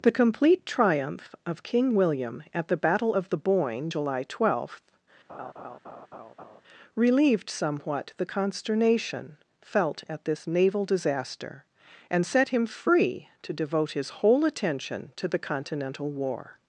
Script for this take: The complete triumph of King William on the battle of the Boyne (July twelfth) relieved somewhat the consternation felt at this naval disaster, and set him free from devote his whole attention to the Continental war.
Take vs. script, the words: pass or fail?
fail